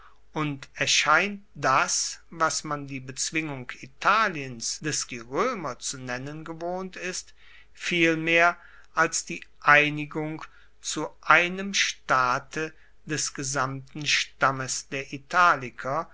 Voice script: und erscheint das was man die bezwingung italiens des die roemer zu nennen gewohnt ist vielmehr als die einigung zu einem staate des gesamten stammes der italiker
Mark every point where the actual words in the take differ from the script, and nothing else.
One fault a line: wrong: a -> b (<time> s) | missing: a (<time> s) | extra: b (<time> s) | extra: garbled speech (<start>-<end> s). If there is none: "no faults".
no faults